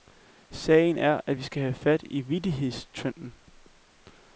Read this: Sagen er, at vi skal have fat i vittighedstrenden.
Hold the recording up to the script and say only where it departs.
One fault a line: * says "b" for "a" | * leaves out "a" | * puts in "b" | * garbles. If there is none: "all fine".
all fine